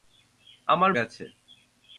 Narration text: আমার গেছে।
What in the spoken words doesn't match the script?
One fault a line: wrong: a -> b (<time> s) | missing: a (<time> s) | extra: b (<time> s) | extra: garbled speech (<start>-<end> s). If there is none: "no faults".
no faults